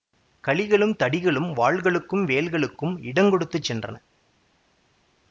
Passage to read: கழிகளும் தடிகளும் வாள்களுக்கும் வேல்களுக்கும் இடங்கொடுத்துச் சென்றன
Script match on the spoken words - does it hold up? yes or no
yes